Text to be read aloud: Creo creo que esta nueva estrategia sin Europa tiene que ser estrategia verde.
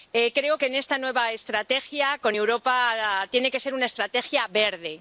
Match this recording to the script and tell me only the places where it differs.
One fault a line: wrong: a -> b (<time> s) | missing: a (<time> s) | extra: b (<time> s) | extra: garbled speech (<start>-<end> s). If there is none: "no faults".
missing: creo (0.6 s)
wrong: sin -> con (2.2 s)
extra: una (3.7 s)